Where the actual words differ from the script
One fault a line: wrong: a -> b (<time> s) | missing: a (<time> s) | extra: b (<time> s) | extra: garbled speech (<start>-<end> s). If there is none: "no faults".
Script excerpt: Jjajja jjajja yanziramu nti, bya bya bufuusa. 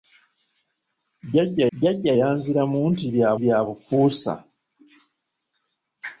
no faults